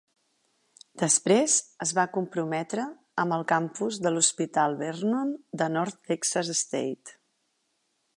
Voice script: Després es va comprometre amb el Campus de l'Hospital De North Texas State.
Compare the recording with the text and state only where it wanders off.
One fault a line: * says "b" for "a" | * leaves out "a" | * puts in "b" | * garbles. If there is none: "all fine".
* puts in "Vernon"